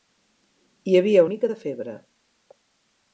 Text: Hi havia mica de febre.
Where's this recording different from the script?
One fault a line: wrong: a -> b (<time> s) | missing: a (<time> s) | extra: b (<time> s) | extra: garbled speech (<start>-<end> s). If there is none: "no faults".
no faults